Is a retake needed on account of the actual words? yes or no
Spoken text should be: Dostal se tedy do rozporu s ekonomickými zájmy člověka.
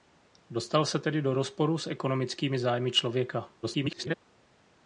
yes